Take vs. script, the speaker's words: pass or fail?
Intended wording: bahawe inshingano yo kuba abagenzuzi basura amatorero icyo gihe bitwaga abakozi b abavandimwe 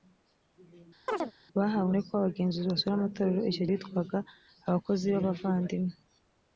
fail